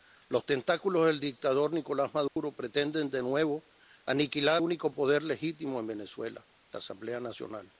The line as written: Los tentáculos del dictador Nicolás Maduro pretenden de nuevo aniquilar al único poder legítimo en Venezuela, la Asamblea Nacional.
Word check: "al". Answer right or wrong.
wrong